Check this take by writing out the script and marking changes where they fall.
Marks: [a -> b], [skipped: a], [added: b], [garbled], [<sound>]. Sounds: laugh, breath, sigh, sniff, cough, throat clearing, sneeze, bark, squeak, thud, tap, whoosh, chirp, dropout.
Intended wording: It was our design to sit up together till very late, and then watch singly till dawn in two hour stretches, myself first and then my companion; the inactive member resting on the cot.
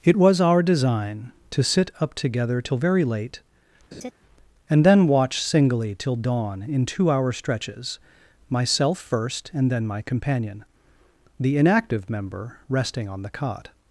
It was our design to sit up together till very late, [laugh] and then watch singly till dawn in two hour stretches, myself first and then my companion; the inactive member resting on the cot.